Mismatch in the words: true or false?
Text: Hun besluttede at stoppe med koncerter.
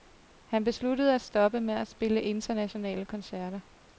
true